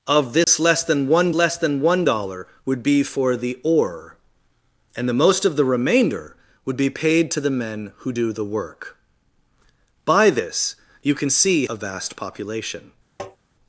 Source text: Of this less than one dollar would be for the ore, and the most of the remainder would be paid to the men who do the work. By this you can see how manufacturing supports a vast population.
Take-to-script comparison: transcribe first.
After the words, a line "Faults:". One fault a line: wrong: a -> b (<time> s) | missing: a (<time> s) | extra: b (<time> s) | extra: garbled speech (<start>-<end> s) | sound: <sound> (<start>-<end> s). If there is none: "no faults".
Of this less than one less than one dollar would be for the ore, and the most of the remainder would be paid to the men who do the work. By this you can see a vast population.
Faults:
sound: dropout (0.4-0.5 s)
extra: less than one (1.3 s)
missing: how manufacturing supports (11.7 s)
sound: tap (13.2-13.4 s)